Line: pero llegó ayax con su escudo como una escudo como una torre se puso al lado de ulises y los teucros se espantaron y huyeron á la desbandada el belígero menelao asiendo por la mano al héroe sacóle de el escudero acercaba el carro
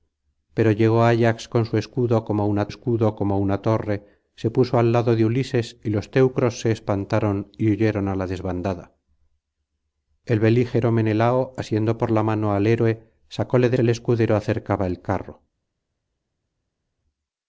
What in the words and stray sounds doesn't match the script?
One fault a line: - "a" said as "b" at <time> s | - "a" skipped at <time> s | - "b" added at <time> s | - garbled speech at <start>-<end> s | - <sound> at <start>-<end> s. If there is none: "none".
none